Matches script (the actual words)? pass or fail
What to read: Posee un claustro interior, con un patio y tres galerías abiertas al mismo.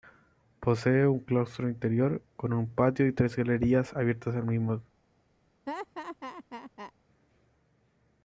pass